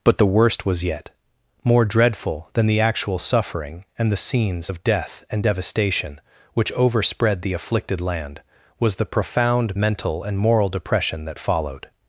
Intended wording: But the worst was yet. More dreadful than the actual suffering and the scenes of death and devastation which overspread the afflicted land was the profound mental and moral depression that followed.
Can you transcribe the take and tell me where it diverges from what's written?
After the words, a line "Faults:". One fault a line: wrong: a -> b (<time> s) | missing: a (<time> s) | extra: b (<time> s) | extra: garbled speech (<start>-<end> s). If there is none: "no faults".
But the worst was yet. More dreadful than the actual suffering and the scenes of death and devastation which overspread the afflicted land was the profound mental and moral depression that followed.
Faults:
no faults